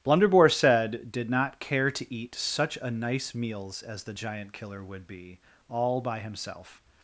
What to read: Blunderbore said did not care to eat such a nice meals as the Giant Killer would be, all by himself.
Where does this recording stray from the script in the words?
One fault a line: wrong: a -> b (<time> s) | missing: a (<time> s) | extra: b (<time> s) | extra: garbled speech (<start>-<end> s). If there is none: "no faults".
no faults